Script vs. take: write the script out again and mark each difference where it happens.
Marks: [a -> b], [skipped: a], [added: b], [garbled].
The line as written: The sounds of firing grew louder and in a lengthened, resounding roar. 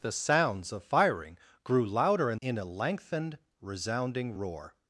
The sounds of firing grew louder and in a lengthened, resounding roar.